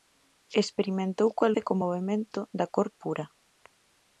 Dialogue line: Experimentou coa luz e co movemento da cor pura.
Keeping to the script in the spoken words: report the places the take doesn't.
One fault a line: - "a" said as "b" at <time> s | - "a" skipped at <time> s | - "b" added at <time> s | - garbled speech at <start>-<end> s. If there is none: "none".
- "luz" skipped at 1.5 s